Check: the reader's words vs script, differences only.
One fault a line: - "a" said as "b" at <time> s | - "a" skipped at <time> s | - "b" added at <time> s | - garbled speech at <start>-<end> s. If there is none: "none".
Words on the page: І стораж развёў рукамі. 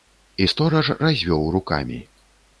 none